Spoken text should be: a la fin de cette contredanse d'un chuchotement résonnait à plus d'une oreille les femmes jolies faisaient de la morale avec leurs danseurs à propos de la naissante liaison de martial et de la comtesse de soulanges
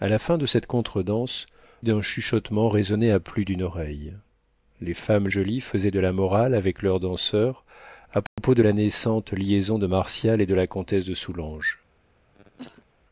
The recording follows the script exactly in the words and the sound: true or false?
false